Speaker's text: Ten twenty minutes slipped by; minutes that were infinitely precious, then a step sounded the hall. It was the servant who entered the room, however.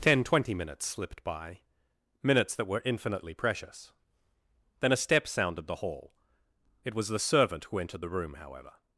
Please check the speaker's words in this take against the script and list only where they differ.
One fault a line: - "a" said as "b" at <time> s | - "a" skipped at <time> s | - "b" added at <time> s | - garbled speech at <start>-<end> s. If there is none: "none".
none